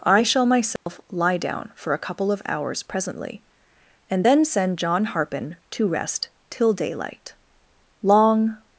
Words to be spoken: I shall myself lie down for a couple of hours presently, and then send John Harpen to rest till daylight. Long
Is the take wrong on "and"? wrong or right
right